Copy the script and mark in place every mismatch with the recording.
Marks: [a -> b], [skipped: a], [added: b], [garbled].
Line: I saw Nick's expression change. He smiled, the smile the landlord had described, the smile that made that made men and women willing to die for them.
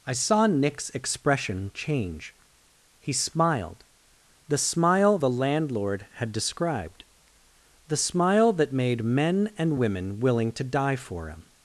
I saw Nick's expression change. He smiled, the smile the landlord had described, the smile that made [skipped: that made] men and women willing to die for [them. -> him]